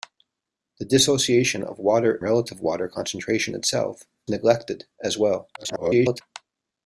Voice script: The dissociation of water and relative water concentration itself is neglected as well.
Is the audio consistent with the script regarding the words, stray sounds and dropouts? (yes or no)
no